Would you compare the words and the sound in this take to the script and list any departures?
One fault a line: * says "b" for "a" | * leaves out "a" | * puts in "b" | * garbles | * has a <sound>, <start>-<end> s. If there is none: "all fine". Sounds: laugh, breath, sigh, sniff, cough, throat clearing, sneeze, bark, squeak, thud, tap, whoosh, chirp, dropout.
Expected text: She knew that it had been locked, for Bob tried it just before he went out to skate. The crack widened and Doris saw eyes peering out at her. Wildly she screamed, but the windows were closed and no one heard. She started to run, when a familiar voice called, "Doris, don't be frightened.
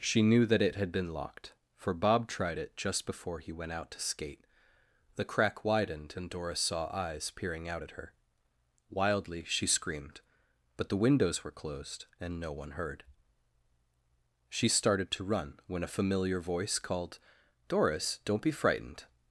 all fine